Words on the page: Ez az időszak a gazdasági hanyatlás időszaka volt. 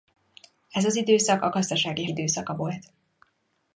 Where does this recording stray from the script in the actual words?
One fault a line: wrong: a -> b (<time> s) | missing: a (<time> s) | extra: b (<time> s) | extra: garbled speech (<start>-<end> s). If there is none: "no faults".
missing: hanyatlás (2.0 s)